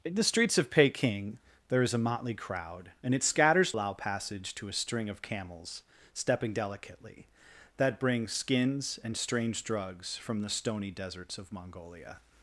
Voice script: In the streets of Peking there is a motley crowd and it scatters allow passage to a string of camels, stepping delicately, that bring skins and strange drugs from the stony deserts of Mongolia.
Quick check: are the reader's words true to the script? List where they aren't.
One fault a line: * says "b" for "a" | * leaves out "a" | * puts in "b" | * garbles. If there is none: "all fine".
all fine